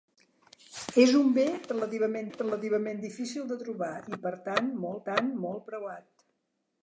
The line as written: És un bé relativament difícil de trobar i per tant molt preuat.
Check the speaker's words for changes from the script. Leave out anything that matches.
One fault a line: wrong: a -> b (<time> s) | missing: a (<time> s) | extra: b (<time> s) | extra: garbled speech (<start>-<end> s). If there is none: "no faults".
extra: relativament (2.4 s)
extra: tant molt (5.1 s)